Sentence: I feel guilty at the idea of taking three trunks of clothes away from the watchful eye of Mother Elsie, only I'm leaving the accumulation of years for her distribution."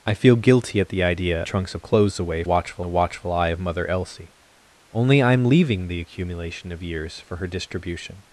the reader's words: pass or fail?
fail